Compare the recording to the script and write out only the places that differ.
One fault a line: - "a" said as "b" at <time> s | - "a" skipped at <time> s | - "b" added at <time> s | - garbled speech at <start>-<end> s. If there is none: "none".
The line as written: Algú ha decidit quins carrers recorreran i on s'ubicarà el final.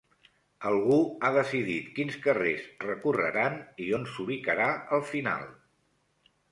none